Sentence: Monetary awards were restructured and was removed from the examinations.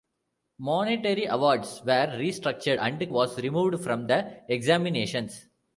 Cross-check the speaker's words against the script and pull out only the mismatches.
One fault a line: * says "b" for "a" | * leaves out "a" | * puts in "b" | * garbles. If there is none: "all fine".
all fine